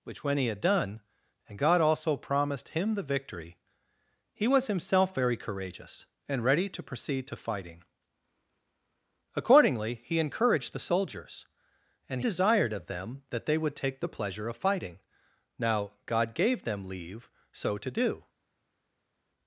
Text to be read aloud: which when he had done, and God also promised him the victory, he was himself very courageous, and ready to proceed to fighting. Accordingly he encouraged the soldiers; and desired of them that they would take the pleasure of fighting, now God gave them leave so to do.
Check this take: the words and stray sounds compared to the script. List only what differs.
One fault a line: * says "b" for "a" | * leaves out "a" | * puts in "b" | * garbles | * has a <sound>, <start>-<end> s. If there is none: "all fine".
all fine